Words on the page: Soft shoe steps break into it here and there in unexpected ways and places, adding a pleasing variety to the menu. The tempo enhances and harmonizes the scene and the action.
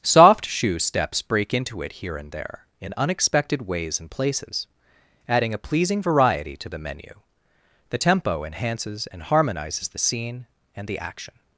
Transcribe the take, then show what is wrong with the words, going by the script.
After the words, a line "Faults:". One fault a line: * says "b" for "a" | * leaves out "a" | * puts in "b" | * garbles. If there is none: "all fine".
Soft shoe steps break into it here and there in unexpected ways and places, adding a pleasing variety to the menu. The tempo enhances and harmonizes the scene and the action.
Faults:
all fine